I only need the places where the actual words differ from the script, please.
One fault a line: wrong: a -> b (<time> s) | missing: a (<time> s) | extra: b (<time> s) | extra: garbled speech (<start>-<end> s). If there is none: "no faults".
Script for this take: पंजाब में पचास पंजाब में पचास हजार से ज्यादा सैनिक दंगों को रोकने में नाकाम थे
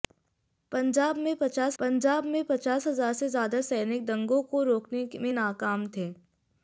no faults